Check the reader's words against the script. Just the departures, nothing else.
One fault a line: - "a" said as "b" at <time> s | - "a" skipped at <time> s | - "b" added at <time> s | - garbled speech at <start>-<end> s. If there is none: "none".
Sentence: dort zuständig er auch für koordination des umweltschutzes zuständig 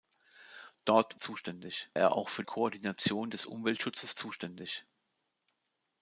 none